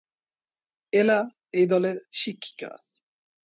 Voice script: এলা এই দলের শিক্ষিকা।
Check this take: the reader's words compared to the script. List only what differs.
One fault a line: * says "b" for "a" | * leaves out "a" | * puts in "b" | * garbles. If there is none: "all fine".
all fine